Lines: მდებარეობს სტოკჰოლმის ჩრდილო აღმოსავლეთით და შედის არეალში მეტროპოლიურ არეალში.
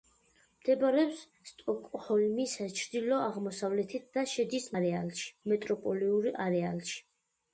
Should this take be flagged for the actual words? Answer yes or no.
no